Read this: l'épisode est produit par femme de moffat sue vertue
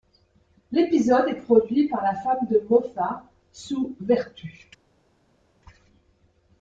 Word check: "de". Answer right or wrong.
right